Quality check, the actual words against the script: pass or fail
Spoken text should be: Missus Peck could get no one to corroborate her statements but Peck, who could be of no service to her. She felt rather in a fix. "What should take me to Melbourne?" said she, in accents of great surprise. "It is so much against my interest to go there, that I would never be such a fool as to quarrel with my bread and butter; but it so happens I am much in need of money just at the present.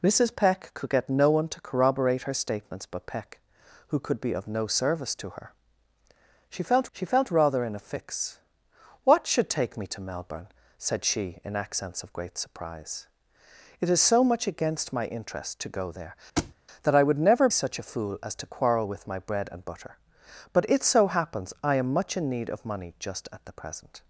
fail